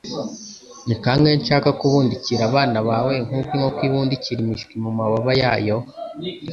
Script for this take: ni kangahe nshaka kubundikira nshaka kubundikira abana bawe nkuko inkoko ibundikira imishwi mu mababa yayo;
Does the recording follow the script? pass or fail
fail